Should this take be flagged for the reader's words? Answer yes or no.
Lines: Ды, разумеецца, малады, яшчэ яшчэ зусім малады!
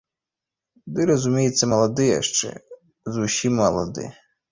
yes